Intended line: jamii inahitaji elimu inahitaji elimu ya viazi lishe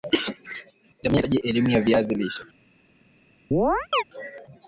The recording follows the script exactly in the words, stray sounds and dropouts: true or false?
false